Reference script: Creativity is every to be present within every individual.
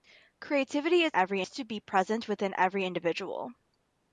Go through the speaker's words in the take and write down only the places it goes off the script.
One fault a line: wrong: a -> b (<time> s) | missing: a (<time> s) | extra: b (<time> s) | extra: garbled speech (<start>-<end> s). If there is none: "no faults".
no faults